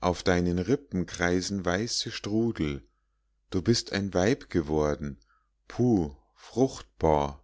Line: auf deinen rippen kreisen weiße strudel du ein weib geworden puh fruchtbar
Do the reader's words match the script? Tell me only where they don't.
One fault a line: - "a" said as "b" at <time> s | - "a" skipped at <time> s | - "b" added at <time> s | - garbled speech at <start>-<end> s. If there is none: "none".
- "bist" added at 3.6 s